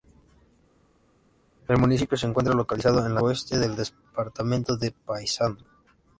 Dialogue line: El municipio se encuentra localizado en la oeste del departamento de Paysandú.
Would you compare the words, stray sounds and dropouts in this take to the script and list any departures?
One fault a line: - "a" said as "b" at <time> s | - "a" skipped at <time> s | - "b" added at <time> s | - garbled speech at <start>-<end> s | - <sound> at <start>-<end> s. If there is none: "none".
none